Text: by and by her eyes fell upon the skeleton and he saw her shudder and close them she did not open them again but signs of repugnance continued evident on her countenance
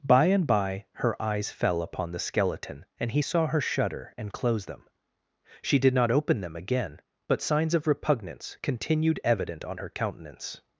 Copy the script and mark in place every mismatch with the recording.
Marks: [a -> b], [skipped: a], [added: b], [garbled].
by and by her eyes fell upon the skeleton and he saw her shudder and close them she did not open them again but signs of repugnance continued evident on her countenance